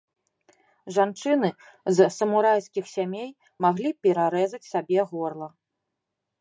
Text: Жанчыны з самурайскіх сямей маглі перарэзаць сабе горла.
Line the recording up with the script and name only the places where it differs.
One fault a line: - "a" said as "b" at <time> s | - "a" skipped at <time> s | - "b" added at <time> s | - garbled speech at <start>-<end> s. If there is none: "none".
none